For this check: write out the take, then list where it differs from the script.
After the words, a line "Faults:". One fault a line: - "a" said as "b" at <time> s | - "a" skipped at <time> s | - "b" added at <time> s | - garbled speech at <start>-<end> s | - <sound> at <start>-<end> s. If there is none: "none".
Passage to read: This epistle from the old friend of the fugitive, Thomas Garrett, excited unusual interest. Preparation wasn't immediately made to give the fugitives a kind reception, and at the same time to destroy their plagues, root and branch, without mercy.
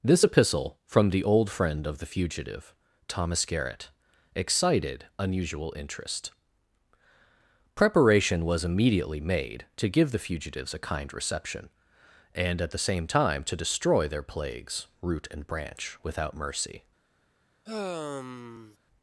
This epistle from the old friend of the fugitive, Thomas Garrett, excited unusual interest. Preparation was immediately made to give the fugitives a kind reception, and at the same time to destroy their plagues, root and branch, without mercy.
Faults:
- "wasn't" said as "was" at 8.4 s
- sigh at 17.7-18.8 s